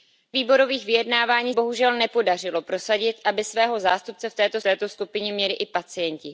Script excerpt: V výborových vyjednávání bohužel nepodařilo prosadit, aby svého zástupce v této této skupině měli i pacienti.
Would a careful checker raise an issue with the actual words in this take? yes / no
no